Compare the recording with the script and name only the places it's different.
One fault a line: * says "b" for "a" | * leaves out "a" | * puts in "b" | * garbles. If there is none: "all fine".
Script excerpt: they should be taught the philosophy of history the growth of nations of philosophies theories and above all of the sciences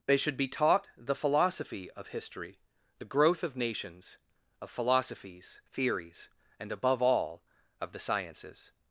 all fine